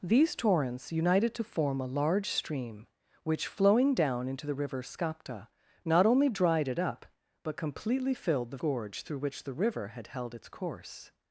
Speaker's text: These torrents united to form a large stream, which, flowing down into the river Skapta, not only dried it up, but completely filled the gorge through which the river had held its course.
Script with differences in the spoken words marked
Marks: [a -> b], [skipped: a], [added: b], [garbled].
These torrents united to form a large stream, which, flowing down into the river Skapta, not only dried it up, but completely filled the gorge through which the river had held its course.